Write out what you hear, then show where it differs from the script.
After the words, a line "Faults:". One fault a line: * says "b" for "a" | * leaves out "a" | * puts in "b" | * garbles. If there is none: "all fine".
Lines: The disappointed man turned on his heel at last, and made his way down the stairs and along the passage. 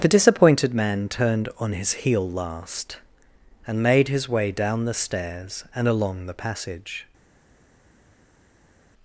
The disappointed man turned on his heel last, and made his way down the stairs and along the passage.
Faults:
* leaves out "at"